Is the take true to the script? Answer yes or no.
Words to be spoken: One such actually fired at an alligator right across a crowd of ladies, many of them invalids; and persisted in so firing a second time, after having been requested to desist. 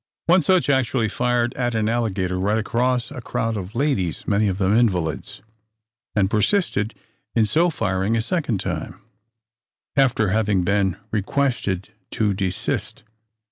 yes